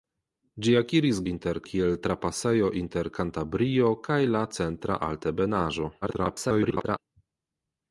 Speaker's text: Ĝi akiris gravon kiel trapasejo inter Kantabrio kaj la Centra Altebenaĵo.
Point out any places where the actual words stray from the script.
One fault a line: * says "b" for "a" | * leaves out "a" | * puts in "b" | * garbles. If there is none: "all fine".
* says "inter" for "gravon"
* garbles